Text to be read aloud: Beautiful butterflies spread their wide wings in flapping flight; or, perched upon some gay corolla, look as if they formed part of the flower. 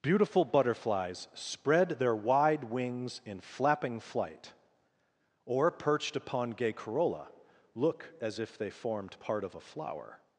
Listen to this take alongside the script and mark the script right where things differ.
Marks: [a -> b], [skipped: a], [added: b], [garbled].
Beautiful butterflies spread their wide wings in flapping flight; or, perched upon [skipped: some] gay corolla, look as if they formed part of [the -> a] flower.